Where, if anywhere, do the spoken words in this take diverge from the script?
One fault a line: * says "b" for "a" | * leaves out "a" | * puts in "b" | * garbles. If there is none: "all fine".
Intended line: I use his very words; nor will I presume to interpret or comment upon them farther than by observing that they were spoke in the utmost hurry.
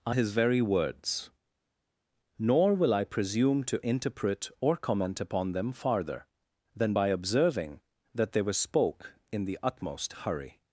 * leaves out "use"